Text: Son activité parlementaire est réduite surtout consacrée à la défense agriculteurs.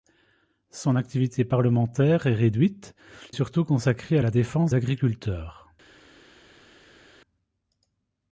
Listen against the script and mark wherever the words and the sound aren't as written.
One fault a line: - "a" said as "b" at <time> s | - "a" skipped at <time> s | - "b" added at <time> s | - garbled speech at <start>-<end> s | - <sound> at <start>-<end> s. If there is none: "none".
none